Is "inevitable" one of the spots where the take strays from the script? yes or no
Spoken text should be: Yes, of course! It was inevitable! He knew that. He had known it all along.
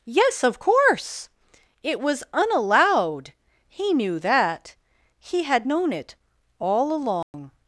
yes